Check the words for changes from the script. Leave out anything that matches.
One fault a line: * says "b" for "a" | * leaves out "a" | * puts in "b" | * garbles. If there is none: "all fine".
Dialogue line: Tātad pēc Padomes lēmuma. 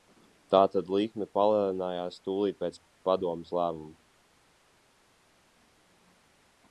* puts in "likme palielinājās tūlīt"